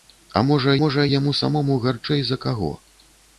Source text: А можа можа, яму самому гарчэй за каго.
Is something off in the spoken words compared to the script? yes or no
no